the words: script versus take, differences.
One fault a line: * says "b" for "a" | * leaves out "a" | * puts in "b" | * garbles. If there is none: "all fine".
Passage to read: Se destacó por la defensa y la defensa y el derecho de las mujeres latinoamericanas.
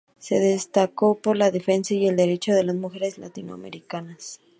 * leaves out "la defensa y"